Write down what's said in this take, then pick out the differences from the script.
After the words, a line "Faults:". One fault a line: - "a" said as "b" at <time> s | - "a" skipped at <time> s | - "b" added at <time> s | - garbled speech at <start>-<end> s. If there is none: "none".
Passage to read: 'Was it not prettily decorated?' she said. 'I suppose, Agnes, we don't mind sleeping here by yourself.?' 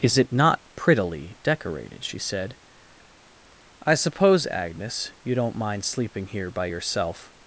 'Is it not prettily decorated?' she said. 'I suppose, Agnes, you don't mind sleeping here by yourself.?'
Faults:
- "Was" said as "Is" at 0.0 s
- "we" said as "you" at 5.2 s